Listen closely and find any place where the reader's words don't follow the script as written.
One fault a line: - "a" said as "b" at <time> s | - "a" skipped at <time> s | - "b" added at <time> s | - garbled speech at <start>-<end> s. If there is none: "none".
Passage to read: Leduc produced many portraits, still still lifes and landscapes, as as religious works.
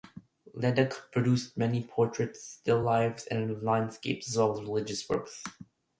- "still" skipped at 2.8 s
- "well" added at 4.4 s